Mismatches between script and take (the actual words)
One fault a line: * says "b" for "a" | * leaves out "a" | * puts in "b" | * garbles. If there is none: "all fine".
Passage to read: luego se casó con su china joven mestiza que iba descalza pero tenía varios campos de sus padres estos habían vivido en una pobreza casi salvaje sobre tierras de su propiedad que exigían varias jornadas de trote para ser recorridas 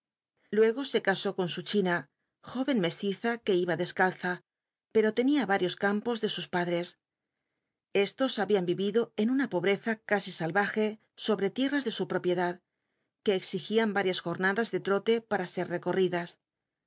all fine